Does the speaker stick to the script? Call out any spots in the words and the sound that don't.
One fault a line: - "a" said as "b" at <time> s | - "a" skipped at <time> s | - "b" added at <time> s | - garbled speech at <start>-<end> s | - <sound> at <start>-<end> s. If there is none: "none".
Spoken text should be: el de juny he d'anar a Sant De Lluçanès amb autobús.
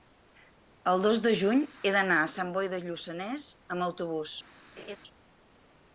- "dos" added at 1.1 s
- "Boi" added at 2.5 s
- laugh at 4.8-5.0 s